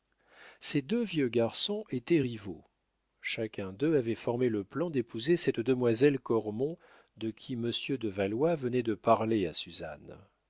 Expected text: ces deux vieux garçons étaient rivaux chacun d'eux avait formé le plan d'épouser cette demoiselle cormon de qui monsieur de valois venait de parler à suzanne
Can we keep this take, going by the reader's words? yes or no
yes